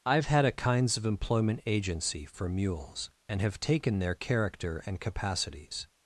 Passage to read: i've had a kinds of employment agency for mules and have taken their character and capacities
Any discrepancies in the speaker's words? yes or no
no